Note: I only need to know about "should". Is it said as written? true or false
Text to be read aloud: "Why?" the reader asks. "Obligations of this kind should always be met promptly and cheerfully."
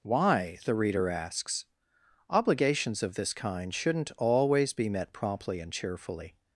false